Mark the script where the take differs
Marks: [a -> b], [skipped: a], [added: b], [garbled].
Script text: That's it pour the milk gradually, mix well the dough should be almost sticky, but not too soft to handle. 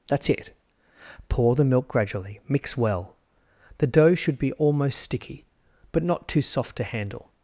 That's it pour the milk gradually, mix well the dough should be almost sticky, but not too soft to handle.